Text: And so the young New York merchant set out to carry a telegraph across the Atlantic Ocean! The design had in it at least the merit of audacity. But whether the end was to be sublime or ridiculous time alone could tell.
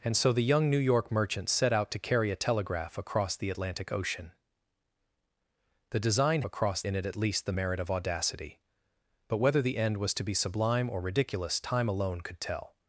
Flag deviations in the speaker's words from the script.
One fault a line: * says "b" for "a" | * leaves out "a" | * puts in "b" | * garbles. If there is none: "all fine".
* says "across" for "had"